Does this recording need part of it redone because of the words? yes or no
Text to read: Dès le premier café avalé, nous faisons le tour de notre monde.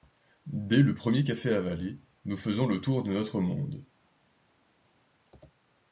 no